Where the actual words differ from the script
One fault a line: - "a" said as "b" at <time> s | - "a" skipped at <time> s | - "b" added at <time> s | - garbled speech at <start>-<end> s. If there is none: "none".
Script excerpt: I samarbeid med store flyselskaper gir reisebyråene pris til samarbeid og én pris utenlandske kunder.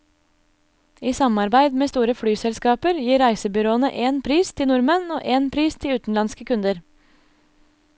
- "én" added at 4.1 s
- "samarbeid" said as "nordmenn" at 4.7 s
- "til" added at 5.8 s